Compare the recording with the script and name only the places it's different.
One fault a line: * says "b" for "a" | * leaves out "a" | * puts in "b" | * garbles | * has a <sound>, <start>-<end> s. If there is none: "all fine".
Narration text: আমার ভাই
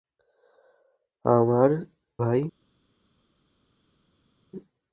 all fine